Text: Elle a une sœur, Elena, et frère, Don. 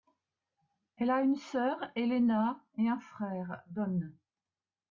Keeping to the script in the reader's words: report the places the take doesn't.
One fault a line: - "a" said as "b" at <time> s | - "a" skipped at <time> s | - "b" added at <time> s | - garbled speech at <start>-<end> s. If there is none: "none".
- "un" added at 2.9 s